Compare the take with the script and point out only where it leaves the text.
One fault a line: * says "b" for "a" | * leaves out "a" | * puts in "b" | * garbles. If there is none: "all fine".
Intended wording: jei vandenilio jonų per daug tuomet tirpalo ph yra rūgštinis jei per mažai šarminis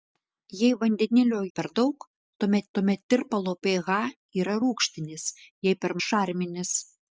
* leaves out "jonų"
* puts in "tuomet"
* leaves out "mažai"